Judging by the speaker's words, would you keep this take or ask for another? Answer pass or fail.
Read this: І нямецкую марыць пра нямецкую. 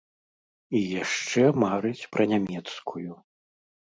fail